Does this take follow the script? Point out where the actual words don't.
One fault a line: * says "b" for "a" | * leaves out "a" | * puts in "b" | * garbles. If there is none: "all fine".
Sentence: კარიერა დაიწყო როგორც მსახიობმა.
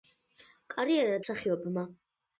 * leaves out "დაიწყო როგორც"